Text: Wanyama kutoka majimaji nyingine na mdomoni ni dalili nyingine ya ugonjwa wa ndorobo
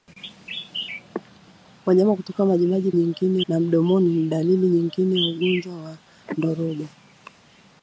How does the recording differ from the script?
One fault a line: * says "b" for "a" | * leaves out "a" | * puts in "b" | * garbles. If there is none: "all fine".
all fine